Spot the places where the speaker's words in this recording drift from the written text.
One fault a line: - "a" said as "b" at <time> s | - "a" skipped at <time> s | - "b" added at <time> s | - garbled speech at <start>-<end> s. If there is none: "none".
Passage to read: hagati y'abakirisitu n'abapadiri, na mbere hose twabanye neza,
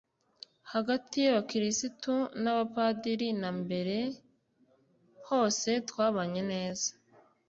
none